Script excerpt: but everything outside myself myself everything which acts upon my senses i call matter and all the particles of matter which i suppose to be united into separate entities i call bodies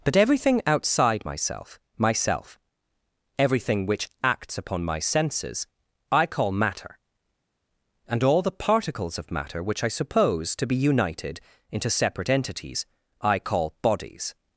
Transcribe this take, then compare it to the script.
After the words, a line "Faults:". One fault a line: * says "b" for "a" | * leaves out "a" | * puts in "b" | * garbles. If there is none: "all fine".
but everything outside myself myself everything which acts upon my senses i call matter and all the particles of matter which i suppose to be united into separate entities i call bodies
Faults:
all fine